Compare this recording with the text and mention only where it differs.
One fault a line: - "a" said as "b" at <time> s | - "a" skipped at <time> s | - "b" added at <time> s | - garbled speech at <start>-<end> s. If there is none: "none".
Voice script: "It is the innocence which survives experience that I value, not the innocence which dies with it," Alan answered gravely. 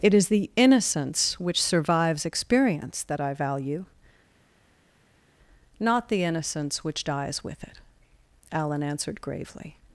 none